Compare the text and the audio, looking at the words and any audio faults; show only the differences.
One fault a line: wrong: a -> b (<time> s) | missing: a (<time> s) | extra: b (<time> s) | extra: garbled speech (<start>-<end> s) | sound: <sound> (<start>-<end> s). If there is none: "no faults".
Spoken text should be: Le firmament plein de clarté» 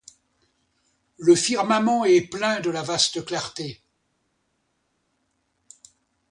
extra: est (2.0 s)
extra: la vaste (2.7 s)